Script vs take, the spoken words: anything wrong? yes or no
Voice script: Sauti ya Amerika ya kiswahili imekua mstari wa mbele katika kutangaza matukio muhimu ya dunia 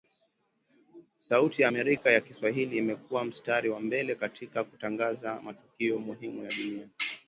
no